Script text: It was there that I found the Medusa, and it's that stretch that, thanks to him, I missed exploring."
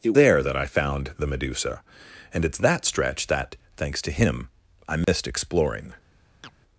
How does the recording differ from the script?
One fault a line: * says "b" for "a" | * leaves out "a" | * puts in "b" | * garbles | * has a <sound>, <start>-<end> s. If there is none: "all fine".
* leaves out "was"
* has a dropout, 5.0-5.1 s
* has a chirp, 6.4-6.5 s